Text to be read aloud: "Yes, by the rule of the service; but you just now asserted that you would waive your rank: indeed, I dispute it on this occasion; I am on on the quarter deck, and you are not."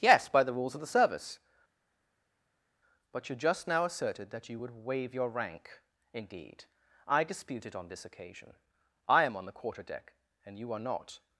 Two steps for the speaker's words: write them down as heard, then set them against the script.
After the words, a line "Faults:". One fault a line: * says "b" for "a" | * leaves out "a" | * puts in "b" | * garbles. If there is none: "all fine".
"Yes, by the rules of the service; but you just now asserted that you would waive your rank: indeed, I dispute it on this occasion; I am on the quarter deck, and you are not."
Faults:
* says "rules" for "rule"
* leaves out "on"